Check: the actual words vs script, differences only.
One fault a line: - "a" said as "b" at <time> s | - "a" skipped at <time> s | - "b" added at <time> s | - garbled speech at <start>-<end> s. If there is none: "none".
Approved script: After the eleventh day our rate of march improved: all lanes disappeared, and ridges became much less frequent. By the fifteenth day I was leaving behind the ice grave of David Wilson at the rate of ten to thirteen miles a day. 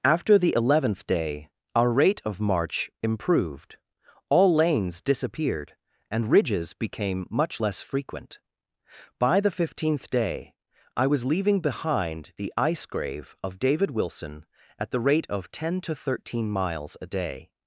none